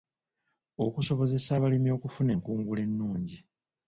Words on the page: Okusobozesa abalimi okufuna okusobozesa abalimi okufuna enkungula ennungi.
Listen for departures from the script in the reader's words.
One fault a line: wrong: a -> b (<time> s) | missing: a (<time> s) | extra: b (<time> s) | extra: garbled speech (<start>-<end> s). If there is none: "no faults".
missing: okusobozesa abalimi okufuna (2.3 s)